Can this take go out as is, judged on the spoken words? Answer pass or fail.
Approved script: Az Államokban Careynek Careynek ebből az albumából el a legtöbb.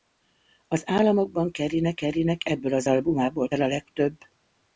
pass